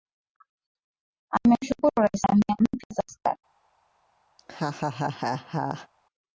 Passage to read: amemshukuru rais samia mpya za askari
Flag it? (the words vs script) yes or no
no